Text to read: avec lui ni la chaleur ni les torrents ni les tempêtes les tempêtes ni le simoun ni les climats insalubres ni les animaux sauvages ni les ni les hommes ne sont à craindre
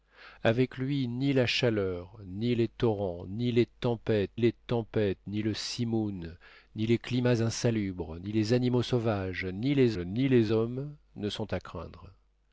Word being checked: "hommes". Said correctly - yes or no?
yes